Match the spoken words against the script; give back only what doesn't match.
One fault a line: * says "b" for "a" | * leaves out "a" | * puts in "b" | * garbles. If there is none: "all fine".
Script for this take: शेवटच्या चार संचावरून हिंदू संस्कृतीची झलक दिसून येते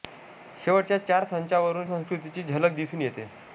* leaves out "हिंदू"